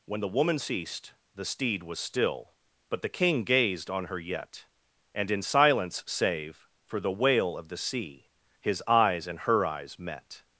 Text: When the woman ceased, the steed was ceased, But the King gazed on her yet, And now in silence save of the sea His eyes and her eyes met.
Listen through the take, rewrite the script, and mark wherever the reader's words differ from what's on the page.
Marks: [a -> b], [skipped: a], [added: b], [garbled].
When the woman ceased, the steed was [ceased, -> still] But the King gazed on her yet, And [skipped: now] in silence save [added: for the wail] of the sea His eyes and her eyes met.